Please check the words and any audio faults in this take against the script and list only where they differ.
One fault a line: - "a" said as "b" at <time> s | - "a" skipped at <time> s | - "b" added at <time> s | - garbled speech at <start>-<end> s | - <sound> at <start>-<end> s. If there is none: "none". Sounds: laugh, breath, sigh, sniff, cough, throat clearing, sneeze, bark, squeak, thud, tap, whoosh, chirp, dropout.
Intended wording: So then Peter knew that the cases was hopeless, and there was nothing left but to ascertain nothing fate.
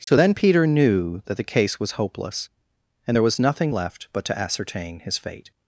- dropout at 0.0-0.1 s
- "cases" said as "case" at 1.5 s
- "nothing" said as "his" at 5.0 s